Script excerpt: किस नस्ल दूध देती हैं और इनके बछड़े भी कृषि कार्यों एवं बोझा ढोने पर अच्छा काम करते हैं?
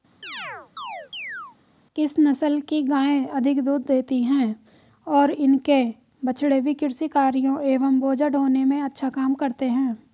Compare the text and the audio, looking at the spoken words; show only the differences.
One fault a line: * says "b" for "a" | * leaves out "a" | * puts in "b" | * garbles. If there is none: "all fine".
* puts in "की गायें अधिक"
* says "में" for "पर"